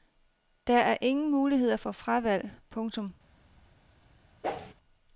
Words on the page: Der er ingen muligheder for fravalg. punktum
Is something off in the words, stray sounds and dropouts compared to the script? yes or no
yes